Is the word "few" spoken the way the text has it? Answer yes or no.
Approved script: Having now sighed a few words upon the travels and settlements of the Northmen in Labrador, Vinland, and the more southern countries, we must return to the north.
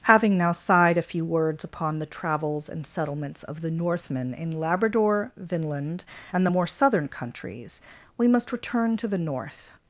yes